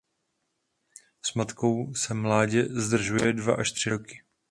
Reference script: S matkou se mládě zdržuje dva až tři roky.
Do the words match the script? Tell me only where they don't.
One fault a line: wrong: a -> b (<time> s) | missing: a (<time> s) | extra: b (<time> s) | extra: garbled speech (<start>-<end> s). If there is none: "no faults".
no faults